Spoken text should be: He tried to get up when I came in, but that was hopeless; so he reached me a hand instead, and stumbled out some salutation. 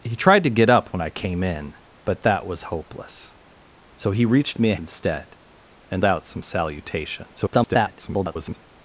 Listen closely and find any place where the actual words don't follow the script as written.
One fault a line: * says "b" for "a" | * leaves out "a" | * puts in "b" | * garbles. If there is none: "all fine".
* leaves out "hand"
* leaves out "stumbled"
* garbles